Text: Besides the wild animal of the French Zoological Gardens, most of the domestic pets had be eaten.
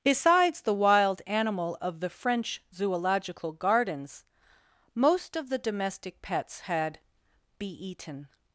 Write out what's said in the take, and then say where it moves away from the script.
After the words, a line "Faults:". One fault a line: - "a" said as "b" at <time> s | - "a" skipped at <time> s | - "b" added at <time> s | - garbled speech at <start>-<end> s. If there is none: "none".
Besides the wild animal of the French Zoological Gardens, most of the domestic pets had be eaten.
Faults:
none